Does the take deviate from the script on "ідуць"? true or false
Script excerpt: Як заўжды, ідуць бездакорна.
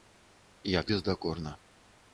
true